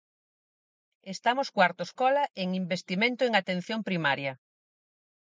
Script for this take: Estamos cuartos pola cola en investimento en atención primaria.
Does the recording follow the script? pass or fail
fail